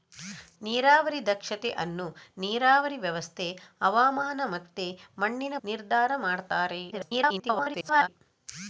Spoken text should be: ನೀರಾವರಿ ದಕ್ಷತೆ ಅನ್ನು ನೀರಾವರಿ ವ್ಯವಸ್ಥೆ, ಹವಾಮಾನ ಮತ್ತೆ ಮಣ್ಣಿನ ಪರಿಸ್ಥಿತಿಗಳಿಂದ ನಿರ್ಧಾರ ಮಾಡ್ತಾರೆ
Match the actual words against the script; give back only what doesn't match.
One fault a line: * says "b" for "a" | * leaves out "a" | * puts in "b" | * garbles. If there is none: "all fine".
* leaves out "ಪರಿಸ್ಥಿತಿಗಳಿಂದ"
* garbles